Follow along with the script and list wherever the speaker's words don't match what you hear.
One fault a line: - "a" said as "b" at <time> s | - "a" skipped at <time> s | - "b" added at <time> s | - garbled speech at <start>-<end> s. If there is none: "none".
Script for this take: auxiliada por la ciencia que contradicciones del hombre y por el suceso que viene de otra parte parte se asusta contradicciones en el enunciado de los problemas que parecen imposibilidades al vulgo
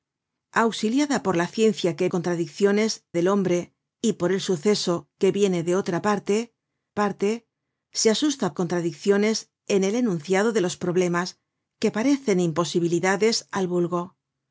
none